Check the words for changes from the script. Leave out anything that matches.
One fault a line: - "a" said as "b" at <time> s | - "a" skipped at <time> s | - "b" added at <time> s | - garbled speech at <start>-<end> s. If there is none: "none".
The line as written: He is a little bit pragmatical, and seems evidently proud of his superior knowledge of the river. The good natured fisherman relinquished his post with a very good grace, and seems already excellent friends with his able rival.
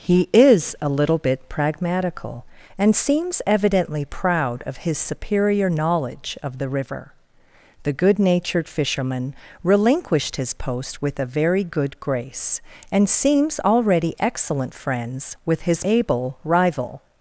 none